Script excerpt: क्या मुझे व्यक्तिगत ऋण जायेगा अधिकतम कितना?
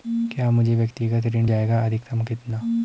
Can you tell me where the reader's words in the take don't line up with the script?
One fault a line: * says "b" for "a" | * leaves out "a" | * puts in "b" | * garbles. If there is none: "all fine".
all fine